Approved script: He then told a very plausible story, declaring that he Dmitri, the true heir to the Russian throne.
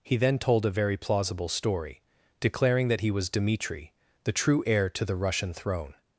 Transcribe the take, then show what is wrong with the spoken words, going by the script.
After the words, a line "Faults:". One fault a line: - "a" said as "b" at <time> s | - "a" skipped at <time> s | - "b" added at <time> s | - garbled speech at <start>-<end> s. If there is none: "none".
He then told a very plausible story, declaring that he was Dmitri, the true heir to the Russian throne.
Faults:
- "was" added at 3.1 s